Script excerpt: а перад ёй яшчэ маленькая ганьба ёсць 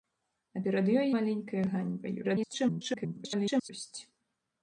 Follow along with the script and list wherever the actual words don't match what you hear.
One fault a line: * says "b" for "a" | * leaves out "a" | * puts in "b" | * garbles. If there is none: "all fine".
* leaves out "яшчэ"
* garbles